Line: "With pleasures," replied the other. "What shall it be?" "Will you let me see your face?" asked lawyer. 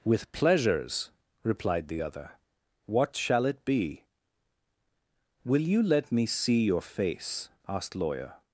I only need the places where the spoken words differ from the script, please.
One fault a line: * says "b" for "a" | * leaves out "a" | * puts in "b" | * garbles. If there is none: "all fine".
all fine